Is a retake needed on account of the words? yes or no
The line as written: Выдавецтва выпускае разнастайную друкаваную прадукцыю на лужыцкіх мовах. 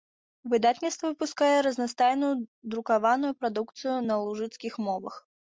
no